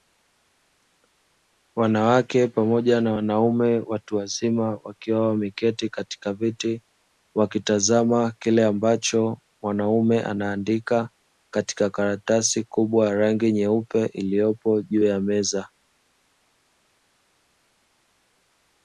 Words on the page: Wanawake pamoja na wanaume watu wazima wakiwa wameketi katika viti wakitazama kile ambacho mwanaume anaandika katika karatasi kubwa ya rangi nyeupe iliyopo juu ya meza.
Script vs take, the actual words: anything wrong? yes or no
no